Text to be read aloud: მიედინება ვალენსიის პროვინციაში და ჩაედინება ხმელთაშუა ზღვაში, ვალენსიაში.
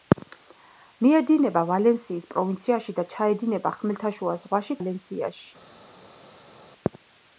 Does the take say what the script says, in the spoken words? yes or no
yes